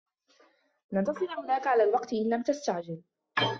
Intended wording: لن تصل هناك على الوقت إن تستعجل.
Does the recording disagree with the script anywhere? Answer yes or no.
yes